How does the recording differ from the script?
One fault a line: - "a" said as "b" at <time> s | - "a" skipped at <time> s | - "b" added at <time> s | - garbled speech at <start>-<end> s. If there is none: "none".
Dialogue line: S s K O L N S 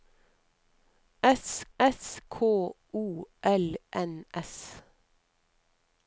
none